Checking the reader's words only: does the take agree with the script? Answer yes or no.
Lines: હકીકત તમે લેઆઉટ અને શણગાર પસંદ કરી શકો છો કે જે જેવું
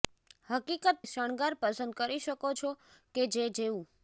no